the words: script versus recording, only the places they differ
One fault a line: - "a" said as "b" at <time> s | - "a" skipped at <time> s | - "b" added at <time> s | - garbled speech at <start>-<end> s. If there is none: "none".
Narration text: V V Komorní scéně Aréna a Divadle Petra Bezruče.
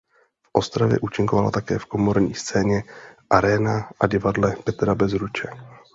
- "Ostravě účinkovala také" added at 0.5 s